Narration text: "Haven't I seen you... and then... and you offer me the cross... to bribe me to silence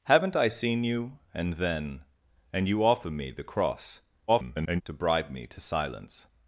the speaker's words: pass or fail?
fail